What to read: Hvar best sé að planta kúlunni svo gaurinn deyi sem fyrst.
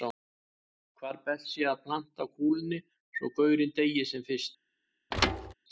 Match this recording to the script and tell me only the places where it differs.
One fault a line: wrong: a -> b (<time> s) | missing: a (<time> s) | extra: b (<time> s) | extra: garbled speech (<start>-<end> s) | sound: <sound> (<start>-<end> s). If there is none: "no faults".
sound: thud (5.1-5.5 s)